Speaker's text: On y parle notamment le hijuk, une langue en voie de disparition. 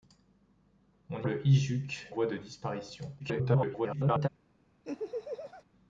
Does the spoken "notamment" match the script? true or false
false